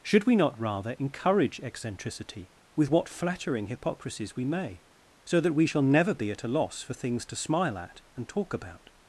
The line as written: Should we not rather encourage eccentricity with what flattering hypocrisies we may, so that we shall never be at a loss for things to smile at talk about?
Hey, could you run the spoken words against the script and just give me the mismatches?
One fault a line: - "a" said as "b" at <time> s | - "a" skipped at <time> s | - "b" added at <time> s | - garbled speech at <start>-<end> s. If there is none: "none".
- "and" added at 8.1 s